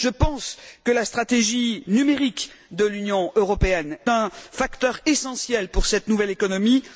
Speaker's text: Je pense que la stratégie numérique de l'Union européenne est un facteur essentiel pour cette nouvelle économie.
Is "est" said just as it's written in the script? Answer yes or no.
no